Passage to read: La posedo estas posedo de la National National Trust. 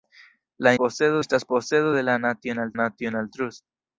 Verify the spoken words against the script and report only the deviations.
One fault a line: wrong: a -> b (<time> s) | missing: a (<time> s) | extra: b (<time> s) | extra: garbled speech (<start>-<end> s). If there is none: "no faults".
no faults